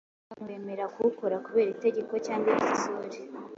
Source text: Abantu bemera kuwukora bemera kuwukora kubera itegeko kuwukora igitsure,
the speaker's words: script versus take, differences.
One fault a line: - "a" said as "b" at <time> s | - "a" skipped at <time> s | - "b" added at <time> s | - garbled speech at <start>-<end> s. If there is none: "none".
- "bemera kuwukora" skipped at 1.4 s
- "kuwukora" said as "cyangwa" at 2.3 s